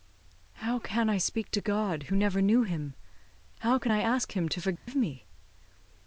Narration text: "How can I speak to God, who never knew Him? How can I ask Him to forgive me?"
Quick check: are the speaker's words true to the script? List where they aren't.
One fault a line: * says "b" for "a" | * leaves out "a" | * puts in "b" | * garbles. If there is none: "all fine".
all fine